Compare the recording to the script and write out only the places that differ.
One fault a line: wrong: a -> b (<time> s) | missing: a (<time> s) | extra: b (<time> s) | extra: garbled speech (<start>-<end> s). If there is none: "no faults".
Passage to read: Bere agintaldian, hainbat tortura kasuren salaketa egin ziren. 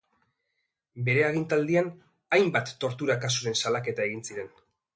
no faults